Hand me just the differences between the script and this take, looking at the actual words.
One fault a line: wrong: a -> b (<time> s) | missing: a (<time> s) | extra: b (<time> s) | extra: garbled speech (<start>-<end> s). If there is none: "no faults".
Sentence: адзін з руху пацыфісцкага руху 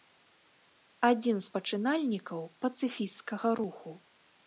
wrong: руху -> пачынальнікаў (1.6 s)